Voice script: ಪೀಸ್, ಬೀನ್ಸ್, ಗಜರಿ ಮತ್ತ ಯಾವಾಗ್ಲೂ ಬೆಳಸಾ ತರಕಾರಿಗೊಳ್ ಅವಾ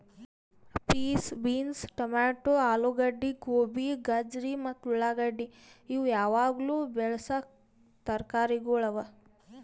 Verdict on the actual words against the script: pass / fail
fail